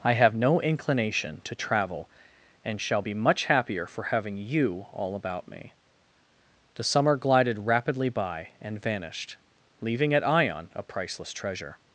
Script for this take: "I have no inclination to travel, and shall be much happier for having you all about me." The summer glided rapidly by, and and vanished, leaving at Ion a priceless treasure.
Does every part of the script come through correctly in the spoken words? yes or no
no